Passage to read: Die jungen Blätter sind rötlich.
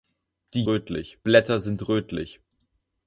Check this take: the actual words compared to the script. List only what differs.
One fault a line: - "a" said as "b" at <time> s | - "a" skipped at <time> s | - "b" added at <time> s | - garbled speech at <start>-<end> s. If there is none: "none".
- "jungen" said as "rötlich" at 0.7 s